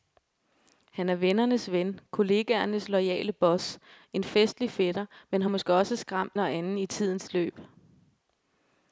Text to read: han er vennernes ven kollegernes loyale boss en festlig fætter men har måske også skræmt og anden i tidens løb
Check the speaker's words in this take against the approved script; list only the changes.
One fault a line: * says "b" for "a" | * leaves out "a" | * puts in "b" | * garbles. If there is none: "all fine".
all fine